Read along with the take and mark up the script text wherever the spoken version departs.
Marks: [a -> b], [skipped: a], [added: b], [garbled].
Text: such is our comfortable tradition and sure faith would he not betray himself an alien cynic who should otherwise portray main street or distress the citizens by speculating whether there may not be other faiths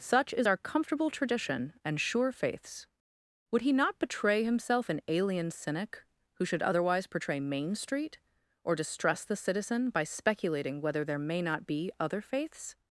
such is our comfortable tradition and sure [faith -> faiths] would he not betray himself an alien cynic who should otherwise portray main street or distress the [citizens -> citizen] by speculating whether there may not be other faiths